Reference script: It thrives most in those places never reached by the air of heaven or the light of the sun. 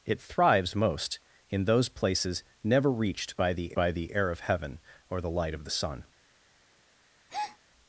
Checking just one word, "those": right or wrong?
right